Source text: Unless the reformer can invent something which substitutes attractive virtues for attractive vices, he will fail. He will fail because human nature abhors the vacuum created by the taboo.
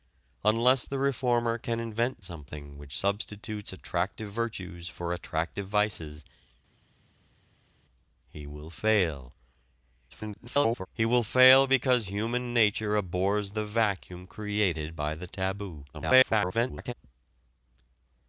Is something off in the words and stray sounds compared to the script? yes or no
yes